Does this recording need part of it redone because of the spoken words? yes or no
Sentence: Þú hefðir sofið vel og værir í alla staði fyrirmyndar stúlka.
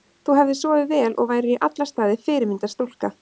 no